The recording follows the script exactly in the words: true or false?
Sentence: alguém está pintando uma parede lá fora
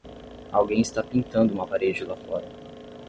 true